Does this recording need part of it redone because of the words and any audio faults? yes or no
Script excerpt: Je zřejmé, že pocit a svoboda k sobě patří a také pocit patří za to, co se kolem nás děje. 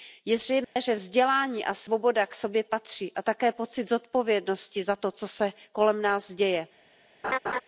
yes